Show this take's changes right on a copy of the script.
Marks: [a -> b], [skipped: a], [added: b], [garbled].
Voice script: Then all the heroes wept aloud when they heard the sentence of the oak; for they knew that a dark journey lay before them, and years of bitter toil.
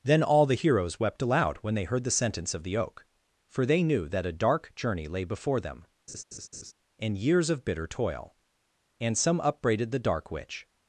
Then all the heroes wept aloud when they heard the sentence of the oak; for they knew that a dark journey lay before them, and years of bitter toil. [added: And some upbraided the dark witch]